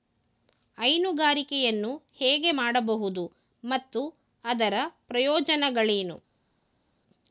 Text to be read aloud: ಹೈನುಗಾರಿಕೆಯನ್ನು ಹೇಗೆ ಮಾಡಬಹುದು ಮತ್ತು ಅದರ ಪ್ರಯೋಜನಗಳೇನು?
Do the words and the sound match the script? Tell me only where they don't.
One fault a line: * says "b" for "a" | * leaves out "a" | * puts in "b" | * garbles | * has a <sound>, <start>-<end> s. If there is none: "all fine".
all fine